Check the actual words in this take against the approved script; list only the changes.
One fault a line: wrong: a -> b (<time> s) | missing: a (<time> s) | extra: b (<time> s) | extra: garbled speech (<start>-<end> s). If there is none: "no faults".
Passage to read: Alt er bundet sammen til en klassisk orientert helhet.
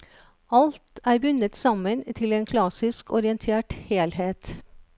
no faults